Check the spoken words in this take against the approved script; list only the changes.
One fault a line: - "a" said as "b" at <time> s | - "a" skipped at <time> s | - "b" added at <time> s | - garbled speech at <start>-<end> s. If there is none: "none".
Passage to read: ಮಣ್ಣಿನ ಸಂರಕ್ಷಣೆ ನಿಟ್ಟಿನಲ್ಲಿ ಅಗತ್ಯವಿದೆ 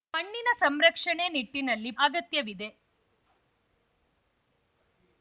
none